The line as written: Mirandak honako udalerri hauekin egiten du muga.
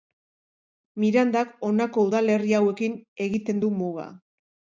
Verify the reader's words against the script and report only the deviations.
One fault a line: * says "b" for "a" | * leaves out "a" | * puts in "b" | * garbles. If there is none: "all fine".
all fine